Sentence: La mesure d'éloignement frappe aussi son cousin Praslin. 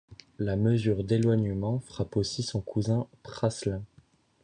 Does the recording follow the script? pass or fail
pass